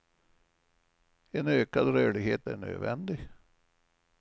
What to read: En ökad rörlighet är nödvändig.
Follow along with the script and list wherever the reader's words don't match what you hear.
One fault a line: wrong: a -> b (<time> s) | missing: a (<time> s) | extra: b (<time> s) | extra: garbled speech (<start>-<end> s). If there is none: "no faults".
no faults